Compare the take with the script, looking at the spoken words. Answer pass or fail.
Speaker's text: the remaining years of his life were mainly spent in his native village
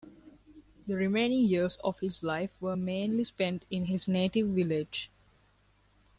pass